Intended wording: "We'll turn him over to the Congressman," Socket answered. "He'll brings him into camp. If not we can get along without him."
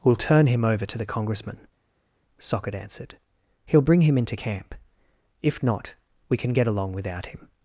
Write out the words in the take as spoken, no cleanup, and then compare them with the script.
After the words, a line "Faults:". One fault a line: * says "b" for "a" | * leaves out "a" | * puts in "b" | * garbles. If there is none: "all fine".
"We'll turn him over to the Congressman," Socket answered. "He'll bring him into camp. If not we can get along without him."
Faults:
* says "bring" for "brings"